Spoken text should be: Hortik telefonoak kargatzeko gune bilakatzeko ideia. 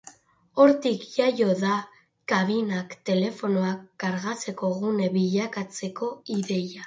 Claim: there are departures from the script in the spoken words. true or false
true